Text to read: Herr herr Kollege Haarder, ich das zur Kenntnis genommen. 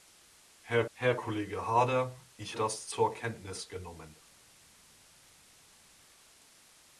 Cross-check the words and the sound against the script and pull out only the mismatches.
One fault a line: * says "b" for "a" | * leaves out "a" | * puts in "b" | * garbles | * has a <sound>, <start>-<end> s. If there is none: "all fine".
all fine